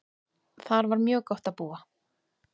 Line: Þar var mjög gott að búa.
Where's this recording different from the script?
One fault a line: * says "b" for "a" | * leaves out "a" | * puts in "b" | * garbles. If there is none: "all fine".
all fine